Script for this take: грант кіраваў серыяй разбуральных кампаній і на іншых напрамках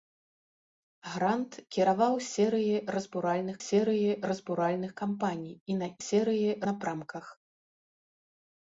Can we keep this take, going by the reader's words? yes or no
no